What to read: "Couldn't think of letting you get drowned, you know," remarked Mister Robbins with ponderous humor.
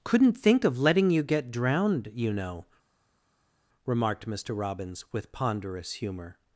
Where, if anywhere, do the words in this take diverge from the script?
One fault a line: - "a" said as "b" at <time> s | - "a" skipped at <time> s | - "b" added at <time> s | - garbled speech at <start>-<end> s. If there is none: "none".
none